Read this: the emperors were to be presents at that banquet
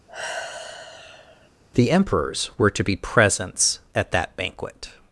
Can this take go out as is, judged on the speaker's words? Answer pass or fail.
pass